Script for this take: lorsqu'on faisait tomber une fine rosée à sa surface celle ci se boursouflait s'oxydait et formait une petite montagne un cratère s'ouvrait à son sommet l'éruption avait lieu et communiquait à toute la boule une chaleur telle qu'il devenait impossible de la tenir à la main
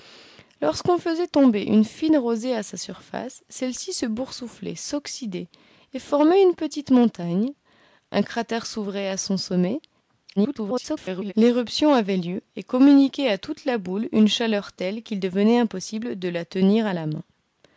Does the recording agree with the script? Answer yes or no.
no